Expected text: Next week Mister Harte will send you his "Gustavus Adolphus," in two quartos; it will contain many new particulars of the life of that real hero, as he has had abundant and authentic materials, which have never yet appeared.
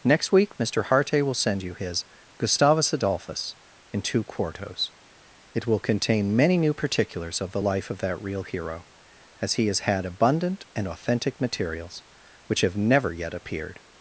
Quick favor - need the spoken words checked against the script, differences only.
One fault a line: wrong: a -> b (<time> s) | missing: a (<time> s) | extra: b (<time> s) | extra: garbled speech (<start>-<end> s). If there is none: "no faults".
no faults